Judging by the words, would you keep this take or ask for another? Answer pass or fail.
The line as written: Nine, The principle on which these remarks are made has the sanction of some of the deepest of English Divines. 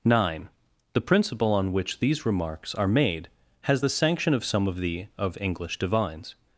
fail